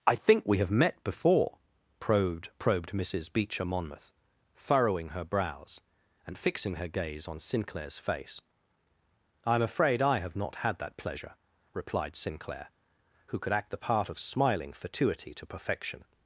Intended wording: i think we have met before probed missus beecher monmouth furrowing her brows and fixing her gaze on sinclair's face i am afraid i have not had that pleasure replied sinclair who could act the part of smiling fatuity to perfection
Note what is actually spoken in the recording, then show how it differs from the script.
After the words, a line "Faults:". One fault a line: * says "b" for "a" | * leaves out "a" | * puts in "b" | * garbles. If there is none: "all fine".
i think we have met before probed probed missus beecher monmouth furrowing her brows and fixing her gaze on sinclair's face i am afraid i have not had that pleasure replied sinclair who could act the part of smiling fatuity to perfection
Faults:
* puts in "probed"